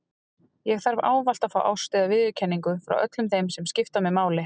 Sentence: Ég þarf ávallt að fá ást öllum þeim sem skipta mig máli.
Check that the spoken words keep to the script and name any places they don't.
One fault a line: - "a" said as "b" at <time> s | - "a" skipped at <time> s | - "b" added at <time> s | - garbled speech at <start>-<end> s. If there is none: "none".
- "eða viðurkenningu frá" added at 2.0 s